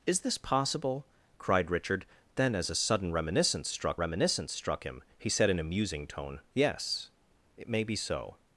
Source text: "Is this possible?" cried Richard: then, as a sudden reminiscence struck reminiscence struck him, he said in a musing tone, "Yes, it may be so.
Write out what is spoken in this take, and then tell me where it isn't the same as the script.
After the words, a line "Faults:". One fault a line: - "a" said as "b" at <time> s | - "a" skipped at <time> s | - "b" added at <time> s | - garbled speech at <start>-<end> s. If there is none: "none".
"Is this possible?" cried Richard: then, as a sudden reminiscence struck reminiscence struck him, he said in a musing tone, "Yes, it may be so.
Faults:
none